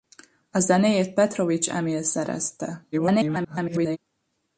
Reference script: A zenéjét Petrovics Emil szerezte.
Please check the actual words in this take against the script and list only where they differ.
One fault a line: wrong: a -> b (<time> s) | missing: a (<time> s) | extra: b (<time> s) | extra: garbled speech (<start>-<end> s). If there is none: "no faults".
extra: garbled speech (2.9-4.0 s)